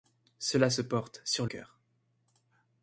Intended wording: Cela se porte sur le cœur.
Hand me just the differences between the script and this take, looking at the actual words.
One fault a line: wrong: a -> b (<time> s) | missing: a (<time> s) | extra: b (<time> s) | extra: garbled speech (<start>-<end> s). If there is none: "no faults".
missing: le (1.5 s)